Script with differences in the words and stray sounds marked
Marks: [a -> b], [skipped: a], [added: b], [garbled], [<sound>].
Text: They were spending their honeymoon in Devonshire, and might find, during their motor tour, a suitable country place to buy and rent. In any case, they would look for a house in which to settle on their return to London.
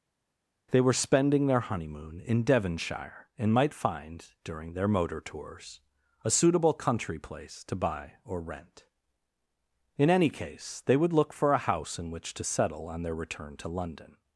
They were spending their honeymoon in Devonshire, and might find, during their motor [tour, -> tours] a suitable country place to buy [and -> or] rent. In any case, they would look for a house in which to settle on their return to London.